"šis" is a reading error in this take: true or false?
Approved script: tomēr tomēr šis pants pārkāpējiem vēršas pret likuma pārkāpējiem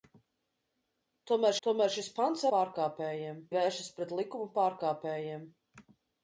false